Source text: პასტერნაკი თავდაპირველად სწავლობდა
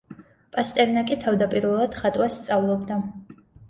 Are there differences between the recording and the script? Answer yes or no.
yes